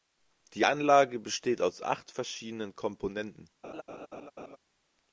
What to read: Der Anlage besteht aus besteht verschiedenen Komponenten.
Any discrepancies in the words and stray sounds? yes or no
yes